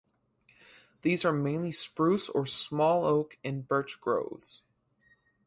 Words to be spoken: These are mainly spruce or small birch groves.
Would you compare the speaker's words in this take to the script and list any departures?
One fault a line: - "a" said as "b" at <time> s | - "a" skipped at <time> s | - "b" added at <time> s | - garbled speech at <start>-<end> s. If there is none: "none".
- "oak and" added at 3.0 s